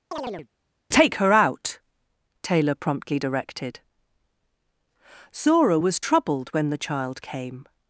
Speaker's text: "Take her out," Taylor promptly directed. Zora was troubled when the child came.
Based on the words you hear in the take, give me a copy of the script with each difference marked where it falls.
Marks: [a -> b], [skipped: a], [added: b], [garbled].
"Take her out," Taylor promptly directed. Zora was troubled when the child came.